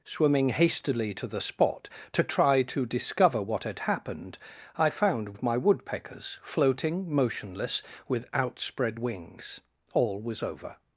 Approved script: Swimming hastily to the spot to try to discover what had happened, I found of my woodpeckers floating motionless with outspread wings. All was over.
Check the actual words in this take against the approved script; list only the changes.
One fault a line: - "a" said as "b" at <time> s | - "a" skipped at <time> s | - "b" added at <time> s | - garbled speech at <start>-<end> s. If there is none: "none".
none